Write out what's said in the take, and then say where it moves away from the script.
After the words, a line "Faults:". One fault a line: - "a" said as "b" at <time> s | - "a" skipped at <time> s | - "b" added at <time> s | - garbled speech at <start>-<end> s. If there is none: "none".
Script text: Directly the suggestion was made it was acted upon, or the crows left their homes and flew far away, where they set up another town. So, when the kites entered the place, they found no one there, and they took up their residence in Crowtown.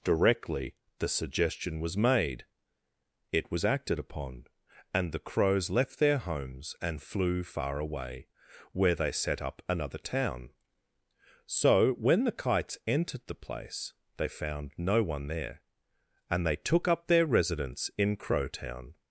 Directly the suggestion was made it was acted upon, and the crows left their homes and flew far away, where they set up another town. So, when the kites entered the place, they found no one there, and they took up their residence in Crowtown.
Faults:
- "or" said as "and" at 4.9 s